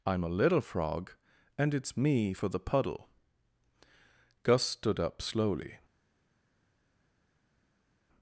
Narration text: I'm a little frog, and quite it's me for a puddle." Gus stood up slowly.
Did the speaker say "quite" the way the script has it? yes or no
no